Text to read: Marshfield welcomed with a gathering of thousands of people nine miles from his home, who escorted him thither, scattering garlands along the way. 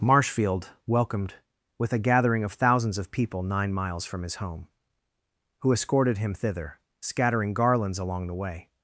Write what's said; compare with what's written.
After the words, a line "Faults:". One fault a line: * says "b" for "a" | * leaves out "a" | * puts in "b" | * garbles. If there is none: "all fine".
Marshfield welcomed with a gathering of thousands of people nine miles from his home, who escorted him thither, scattering garlands along the way.
Faults:
all fine